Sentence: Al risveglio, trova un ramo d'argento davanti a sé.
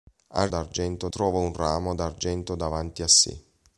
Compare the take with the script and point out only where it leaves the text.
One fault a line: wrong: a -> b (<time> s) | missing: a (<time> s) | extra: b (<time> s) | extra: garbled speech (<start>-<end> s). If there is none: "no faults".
wrong: risveglio -> d'argento (0.5 s)